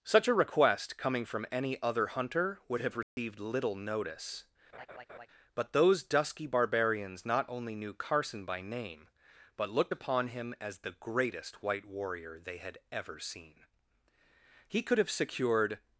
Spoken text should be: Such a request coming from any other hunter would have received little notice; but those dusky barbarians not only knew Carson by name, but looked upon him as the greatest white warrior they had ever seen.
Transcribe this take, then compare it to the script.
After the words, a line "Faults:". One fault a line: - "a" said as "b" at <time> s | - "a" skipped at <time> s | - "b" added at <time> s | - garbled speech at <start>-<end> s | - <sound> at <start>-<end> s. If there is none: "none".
Such a request coming from any other hunter would have received little notice; but those dusky barbarians not only knew Carson by name, but looked upon him as the greatest white warrior they had ever seen. He could have secured
Faults:
- dropout at 3.0-3.2 s
- laugh at 4.7-5.3 s
- "He could have secured" added at 14.7 s